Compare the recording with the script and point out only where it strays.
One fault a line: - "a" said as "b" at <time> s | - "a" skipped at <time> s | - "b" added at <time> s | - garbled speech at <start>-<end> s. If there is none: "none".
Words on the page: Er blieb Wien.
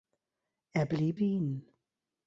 none